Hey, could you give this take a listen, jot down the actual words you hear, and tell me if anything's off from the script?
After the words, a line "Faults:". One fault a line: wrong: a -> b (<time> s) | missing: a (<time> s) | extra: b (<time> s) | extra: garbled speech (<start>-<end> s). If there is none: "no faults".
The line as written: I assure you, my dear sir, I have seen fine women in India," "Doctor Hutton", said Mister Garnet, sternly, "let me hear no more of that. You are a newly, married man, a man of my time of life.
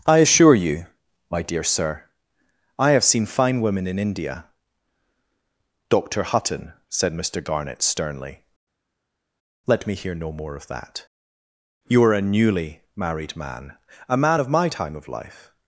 I assure you, my dear sir, I have seen fine women in India," "Doctor Hutton", said Mister Garnet, sternly, "let me hear no more of that. You are a newly, married man, a man of my time of life.
Faults:
no faults